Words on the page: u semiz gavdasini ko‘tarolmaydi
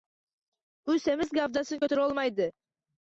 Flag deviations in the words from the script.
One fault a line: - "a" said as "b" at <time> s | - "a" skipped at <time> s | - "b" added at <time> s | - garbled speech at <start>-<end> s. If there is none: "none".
none